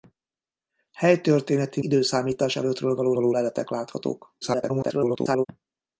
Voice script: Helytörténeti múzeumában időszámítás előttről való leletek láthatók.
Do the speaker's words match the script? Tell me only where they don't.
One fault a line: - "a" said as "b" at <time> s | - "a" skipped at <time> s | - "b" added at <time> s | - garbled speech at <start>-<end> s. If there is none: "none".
- "múzeumában" skipped at 1.8 s
- "való" added at 3.1 s
- garbled speech at 4.4-5.5 s